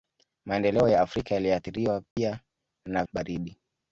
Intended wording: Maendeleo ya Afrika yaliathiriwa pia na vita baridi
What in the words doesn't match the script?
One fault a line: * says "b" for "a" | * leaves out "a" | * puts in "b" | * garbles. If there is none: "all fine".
* leaves out "vita"